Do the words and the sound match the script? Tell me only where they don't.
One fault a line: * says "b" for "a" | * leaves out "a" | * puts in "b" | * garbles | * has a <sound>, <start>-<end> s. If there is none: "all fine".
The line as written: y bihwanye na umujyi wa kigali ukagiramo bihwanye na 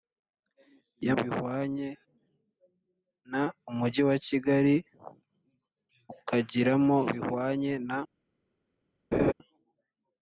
* has a laugh, 9.1-9.3 s